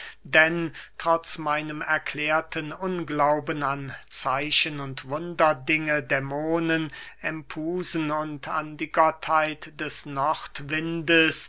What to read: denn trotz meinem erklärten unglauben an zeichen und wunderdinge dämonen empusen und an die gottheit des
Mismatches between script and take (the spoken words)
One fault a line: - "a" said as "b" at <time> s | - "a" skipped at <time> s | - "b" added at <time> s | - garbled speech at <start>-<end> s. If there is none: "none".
none